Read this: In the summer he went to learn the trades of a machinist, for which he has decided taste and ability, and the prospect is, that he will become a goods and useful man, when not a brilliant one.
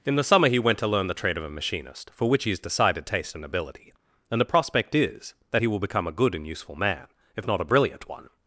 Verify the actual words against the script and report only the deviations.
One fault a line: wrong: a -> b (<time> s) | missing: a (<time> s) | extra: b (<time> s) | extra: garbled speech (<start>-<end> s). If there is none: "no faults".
wrong: trades -> trade (1.1 s)
wrong: goods -> good (6.1 s)
wrong: when -> if (7.4 s)